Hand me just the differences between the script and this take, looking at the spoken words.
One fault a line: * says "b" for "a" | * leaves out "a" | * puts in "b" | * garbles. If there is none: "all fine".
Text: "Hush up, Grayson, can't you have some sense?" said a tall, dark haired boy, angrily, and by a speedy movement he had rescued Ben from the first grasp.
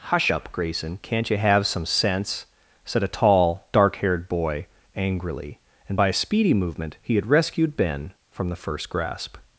all fine